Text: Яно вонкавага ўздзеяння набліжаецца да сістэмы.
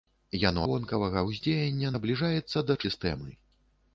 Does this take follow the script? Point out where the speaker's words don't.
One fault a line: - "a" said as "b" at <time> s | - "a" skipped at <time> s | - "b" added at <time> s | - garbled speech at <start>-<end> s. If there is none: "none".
none